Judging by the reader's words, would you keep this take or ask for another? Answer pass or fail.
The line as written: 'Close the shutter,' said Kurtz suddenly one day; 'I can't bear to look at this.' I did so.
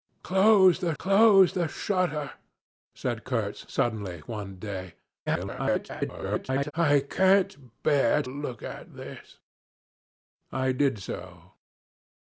fail